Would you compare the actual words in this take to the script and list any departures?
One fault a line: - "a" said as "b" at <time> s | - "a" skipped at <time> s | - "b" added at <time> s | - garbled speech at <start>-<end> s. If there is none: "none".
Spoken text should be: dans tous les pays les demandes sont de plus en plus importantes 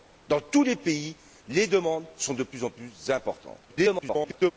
- garbled speech at 3.7-4.5 s